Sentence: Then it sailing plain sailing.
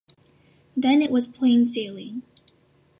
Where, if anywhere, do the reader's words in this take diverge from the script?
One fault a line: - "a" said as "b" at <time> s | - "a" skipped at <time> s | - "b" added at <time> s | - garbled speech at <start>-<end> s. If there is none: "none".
- "sailing" said as "was" at 1.1 s